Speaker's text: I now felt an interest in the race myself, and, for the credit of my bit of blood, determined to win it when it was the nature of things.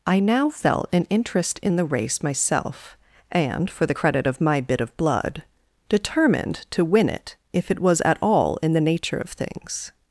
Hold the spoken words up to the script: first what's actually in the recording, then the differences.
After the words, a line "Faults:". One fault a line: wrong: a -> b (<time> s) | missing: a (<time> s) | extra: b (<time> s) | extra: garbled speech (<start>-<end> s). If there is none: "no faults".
I now felt an interest in the race myself, and, for the credit of my bit of blood, determined to win it if it was at all in the nature of things.
Faults:
wrong: when -> if (7.5 s)
extra: at all in (8.0 s)